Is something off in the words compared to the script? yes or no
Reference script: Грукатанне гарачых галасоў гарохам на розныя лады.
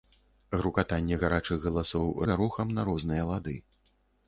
no